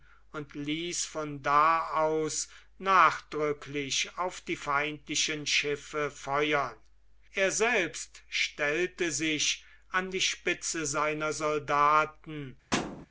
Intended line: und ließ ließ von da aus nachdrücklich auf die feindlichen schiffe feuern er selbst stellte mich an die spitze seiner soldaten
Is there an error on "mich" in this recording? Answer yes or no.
yes